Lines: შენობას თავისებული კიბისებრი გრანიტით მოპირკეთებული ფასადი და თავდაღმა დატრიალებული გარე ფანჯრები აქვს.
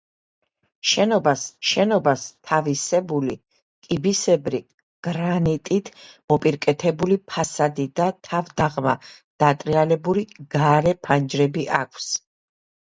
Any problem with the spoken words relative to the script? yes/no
yes